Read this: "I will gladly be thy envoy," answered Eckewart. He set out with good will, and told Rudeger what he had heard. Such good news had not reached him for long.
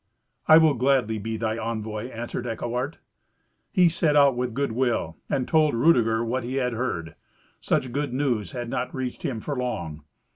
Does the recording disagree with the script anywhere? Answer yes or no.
no